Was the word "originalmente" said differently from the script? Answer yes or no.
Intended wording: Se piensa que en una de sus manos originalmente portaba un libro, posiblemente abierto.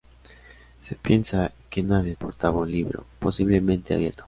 yes